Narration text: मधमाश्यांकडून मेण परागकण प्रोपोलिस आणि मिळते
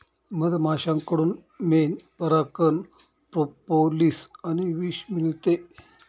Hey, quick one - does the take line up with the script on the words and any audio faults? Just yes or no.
no